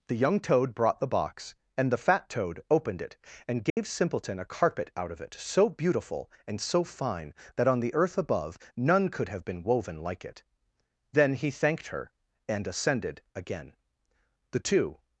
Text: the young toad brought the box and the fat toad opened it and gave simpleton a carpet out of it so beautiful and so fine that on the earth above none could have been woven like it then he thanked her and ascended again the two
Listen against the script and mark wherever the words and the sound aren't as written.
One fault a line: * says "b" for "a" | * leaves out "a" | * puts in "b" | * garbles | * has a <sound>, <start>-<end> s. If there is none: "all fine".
* has a dropout, 3.7-3.8 s